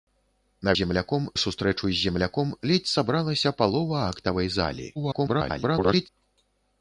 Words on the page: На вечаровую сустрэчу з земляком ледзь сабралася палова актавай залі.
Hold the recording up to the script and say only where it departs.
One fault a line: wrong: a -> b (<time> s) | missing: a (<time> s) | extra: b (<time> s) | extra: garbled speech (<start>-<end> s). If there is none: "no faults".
wrong: вечаровую -> земляком (0.8 s)
extra: garbled speech (5.0-6.1 s)